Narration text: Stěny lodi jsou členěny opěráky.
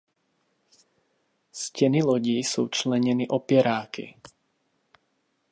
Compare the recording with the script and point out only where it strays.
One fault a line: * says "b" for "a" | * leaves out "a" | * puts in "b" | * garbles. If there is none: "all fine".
all fine